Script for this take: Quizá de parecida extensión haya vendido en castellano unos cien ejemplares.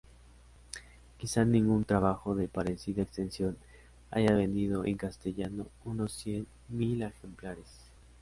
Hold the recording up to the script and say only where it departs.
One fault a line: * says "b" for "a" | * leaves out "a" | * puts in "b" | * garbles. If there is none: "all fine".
* puts in "ningún trabajo"
* puts in "mil"